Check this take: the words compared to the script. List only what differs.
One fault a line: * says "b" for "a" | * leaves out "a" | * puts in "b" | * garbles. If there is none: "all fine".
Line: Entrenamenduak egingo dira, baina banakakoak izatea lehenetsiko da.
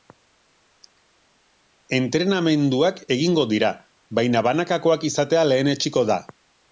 all fine